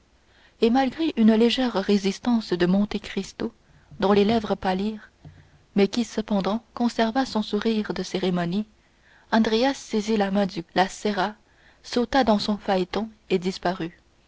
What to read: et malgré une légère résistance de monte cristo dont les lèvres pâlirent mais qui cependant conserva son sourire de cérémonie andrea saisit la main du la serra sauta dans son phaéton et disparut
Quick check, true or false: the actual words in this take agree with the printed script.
true